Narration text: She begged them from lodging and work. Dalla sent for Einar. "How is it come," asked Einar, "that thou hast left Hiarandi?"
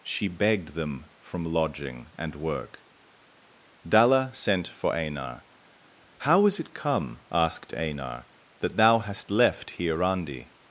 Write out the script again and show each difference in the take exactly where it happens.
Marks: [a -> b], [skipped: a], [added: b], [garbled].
She begged them from lodging and work. Dalla sent for Einar. "How is it come," asked Einar, "that thou hast left Hiarandi?"